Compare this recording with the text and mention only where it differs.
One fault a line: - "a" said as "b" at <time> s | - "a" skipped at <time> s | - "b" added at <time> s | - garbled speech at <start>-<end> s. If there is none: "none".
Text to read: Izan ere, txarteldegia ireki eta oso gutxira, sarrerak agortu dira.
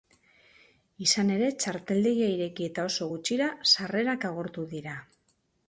none